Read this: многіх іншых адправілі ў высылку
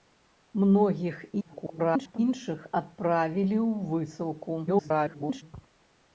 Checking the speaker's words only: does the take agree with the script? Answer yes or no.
no